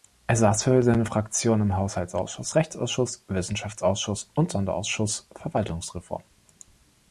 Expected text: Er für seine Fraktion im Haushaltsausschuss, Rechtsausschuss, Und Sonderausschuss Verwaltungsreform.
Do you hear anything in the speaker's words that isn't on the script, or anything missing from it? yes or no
yes